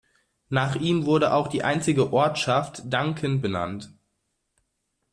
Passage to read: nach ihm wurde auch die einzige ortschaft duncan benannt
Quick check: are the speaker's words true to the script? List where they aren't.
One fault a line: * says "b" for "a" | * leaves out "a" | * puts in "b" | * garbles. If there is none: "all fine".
all fine